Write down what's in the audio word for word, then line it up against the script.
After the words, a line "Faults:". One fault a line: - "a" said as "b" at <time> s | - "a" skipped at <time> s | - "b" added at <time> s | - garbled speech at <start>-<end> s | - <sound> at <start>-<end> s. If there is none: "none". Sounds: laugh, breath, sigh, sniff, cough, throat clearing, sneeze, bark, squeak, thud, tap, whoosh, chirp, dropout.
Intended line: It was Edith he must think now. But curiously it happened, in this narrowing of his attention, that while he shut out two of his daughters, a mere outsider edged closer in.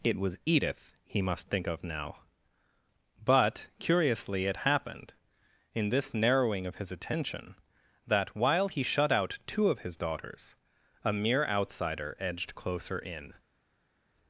It was Edith he must think of now. But curiously it happened, in this narrowing of his attention, that while he shut out two of his daughters, a mere outsider edged closer in.
Faults:
- "of" added at 1.7 s